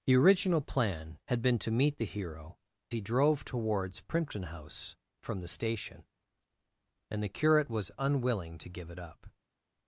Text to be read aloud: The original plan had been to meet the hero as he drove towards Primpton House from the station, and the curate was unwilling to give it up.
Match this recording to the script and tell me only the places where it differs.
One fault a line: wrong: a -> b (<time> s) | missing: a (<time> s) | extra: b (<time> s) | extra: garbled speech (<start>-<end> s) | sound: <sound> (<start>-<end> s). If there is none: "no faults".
missing: as (2.6 s)